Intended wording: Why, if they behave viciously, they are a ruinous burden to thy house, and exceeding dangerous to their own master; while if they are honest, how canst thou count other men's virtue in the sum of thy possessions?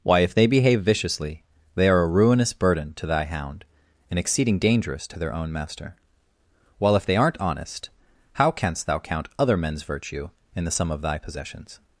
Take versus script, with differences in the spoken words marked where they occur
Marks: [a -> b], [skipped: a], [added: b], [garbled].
Why, if they behave viciously, they are a ruinous burden to thy [house, -> hound] and exceeding dangerous to their own master; while if they [are -> aren't] honest, how canst thou count other men's virtue in the sum of thy possessions?